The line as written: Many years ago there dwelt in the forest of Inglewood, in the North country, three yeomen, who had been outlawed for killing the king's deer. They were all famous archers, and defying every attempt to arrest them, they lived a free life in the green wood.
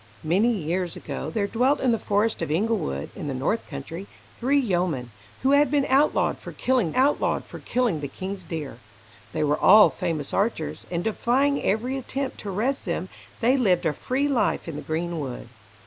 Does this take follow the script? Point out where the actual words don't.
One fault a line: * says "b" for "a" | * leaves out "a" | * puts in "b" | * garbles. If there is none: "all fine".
* puts in "outlawed for killing"